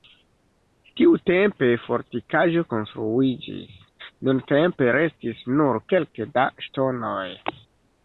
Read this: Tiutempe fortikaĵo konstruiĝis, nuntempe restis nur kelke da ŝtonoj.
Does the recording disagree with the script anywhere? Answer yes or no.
no